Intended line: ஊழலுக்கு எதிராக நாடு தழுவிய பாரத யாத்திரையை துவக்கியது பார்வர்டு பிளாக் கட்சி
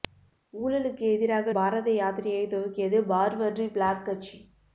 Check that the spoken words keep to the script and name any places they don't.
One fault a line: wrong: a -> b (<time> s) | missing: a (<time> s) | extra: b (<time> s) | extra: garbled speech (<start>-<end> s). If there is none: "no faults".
missing: நாடு தழுவிய (1.5 s)